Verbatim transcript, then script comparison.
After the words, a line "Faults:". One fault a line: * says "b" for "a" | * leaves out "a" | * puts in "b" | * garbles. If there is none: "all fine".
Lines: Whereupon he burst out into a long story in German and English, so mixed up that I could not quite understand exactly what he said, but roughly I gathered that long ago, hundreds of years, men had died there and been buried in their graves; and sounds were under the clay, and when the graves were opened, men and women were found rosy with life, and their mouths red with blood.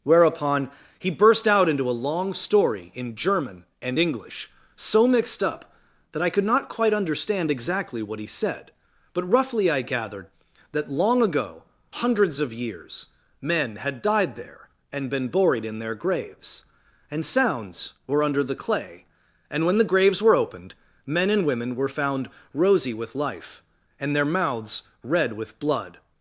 Whereupon he burst out into a long story in German and English, so mixed up that I could not quite understand exactly what he said, but roughly I gathered that long ago, hundreds of years, men had died there and been buried in their graves; and sounds were under the clay, and when the graves were opened, men and women were found rosy with life, and their mouths red with blood.
Faults:
all fine